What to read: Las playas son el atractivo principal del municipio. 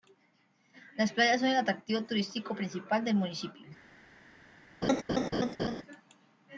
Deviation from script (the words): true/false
true